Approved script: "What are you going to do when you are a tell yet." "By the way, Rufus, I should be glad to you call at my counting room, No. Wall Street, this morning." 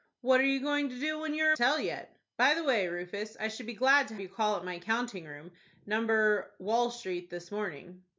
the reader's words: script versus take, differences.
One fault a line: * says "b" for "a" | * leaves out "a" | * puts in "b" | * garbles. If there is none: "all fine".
all fine